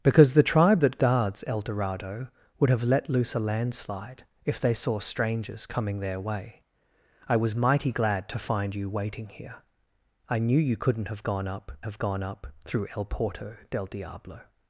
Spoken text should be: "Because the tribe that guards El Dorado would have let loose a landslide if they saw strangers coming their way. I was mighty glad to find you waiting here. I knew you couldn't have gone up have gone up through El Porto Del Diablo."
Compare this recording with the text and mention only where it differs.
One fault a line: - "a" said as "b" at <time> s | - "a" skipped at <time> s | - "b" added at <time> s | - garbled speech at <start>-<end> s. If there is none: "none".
none